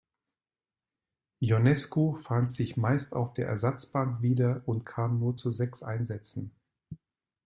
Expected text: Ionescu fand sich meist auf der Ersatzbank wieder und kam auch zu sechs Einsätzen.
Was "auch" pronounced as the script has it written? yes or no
no